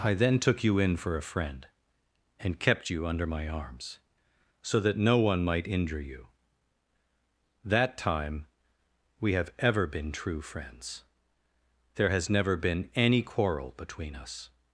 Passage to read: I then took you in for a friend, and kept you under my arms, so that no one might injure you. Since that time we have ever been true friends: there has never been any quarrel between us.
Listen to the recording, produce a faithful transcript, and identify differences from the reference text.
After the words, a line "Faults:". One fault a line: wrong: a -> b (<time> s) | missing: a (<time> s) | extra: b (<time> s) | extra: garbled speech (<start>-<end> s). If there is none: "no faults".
I then took you in for a friend, and kept you under my arms, so that no one might injure you. that time we have ever been true friends: there has never been any quarrel between us.
Faults:
missing: Since (6.3 s)